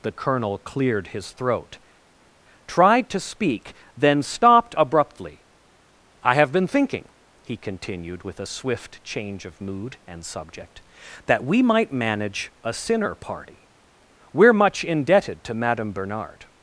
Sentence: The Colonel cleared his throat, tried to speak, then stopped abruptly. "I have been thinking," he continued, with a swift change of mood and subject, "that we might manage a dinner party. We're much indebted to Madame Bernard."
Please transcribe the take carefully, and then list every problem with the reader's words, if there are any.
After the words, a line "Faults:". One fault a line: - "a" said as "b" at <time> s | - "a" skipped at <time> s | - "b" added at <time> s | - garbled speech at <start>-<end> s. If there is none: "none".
The Colonel cleared his throat, tried to speak, then stopped abruptly. "I have been thinking," he continued, with a swift change of mood and subject, "that we might manage a sinner party. We're much indebted to Madame Bernard."
Faults:
- "dinner" said as "sinner" at 12.7 s